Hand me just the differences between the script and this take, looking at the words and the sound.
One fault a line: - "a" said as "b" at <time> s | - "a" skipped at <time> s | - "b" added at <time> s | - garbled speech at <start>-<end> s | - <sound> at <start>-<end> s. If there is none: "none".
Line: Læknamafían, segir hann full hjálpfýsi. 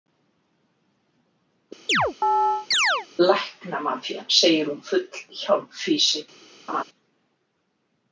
- chirp at 1.9-3.1 s
- "hann" said as "hún" at 4.7 s
- laugh at 6.7-6.8 s